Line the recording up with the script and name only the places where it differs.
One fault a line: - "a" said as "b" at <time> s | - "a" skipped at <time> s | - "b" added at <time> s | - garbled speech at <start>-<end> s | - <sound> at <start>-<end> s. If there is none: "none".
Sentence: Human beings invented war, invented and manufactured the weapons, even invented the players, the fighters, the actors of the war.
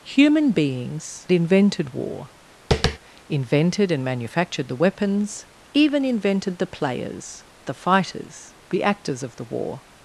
- tap at 2.7-3.0 s